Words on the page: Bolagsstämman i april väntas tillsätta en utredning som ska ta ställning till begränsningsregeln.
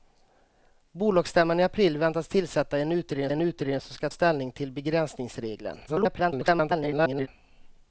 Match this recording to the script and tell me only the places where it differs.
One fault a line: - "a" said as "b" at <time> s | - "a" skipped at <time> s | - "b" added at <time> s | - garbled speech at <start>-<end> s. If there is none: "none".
- "en utredning" added at 3.3 s
- "ta" skipped at 4.1 s
- garbled speech at 5.9-7.3 s